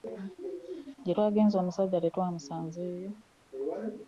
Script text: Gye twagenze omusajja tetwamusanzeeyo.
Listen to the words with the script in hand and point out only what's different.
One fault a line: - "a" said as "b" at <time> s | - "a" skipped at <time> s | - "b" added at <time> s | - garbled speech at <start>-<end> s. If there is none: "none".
none